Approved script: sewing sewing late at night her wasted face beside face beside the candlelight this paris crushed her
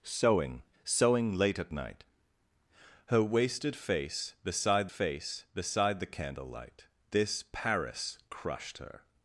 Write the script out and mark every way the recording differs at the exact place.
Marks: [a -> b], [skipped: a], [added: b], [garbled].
sewing sewing late at night her wasted face beside face beside the candlelight this paris crushed her